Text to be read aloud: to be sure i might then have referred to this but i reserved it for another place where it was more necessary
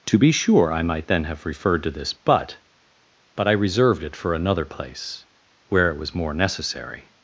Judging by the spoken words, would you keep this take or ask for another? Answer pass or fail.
fail